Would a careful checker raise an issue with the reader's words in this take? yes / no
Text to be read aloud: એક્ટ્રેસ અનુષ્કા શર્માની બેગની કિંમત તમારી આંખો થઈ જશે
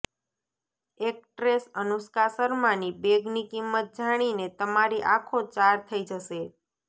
yes